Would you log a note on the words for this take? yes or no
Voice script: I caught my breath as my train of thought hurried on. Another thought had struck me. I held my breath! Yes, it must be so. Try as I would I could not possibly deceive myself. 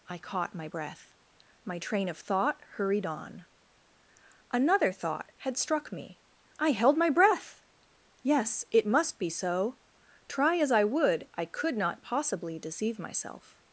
yes